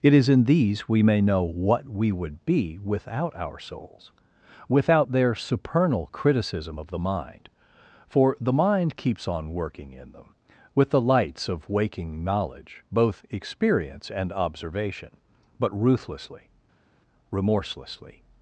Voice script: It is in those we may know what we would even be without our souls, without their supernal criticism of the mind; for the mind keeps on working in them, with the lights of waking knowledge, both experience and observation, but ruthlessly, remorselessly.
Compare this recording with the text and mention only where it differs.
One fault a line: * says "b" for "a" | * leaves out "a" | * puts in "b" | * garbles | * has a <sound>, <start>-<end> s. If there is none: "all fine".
* says "these" for "those"
* leaves out "even"